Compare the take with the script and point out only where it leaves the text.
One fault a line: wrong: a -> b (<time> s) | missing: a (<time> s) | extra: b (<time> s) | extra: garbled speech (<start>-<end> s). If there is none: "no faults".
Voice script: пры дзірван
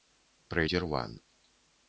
no faults